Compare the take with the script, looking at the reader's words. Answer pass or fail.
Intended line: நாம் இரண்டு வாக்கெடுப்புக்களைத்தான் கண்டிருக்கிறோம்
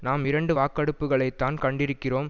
pass